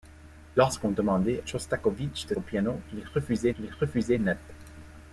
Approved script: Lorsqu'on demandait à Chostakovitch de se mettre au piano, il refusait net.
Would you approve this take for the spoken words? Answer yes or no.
no